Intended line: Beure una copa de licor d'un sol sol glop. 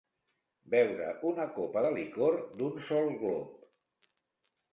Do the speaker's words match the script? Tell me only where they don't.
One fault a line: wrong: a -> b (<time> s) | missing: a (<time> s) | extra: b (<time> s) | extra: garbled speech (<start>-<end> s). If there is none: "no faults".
missing: sol (3.1 s)